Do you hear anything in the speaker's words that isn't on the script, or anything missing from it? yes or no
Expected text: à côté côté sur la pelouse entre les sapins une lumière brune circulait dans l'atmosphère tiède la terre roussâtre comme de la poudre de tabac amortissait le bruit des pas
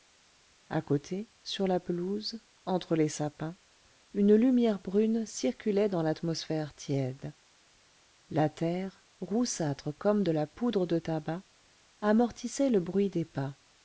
yes